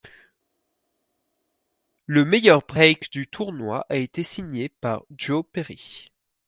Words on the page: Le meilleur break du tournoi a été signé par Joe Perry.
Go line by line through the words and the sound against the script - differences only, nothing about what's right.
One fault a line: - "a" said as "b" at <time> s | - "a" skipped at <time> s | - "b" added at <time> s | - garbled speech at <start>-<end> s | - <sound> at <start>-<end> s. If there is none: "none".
none